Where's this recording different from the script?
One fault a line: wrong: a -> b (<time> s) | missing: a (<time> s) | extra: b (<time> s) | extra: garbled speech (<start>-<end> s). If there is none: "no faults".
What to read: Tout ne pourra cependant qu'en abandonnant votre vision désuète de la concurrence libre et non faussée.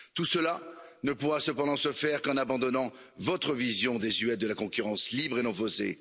extra: cela (0.2 s)
extra: se faire (1.8 s)